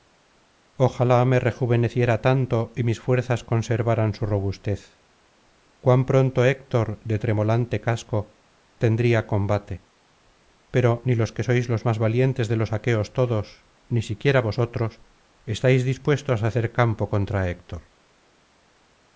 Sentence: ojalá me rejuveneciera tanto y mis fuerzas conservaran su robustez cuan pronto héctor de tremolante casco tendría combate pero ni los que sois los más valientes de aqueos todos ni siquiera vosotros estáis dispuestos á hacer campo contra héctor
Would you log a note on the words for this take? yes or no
yes